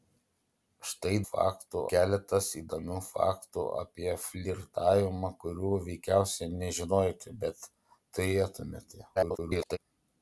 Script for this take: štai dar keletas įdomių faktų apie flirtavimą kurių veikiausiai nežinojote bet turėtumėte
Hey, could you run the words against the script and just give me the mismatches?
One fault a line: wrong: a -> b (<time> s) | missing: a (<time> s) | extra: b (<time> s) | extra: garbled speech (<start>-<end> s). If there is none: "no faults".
wrong: dar -> faktų (1.2 s)
extra: garbled speech (9.2-9.8 s)